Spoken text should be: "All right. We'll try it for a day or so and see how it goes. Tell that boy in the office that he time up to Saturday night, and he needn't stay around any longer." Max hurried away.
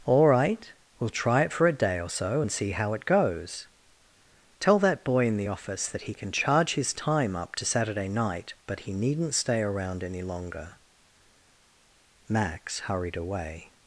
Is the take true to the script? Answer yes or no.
no